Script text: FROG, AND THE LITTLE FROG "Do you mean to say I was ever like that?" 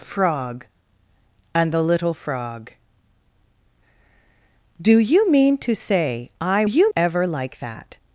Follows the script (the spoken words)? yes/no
no